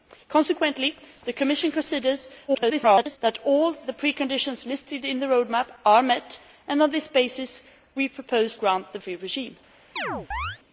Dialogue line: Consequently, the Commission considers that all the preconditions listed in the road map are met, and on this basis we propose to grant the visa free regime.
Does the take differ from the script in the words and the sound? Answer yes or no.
yes